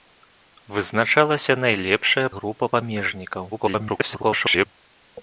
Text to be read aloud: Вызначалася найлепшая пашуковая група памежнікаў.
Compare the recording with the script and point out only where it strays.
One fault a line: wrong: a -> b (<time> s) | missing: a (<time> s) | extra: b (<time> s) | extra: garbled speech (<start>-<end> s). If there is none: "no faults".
missing: пашуковая (2.2 s)
extra: garbled speech (3.5-4.7 s)